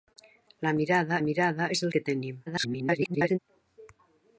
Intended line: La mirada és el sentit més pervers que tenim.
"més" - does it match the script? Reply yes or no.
no